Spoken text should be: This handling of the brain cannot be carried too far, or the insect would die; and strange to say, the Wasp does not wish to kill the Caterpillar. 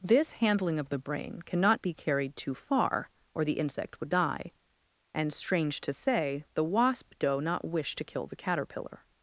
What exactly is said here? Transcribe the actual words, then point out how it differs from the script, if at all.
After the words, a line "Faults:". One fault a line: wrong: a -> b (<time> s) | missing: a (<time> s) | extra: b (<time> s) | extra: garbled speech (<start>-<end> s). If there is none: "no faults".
This handling of the brain cannot be carried too far, or the insect would die; and strange to say, the Wasp doe not wish to kill the Caterpillar.
Faults:
wrong: does -> doe (7.2 s)